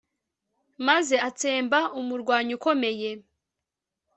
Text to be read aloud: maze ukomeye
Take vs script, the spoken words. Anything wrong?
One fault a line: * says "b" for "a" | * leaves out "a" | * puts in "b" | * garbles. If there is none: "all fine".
* puts in "atsemba umurwanyi"